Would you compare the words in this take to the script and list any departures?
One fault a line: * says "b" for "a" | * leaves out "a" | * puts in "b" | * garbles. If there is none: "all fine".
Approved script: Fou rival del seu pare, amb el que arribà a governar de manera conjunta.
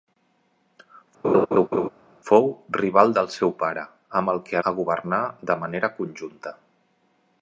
* leaves out "arribà"